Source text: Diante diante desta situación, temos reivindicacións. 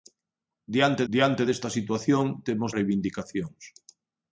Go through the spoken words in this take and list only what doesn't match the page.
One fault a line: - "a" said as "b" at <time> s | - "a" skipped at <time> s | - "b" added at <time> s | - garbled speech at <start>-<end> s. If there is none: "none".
none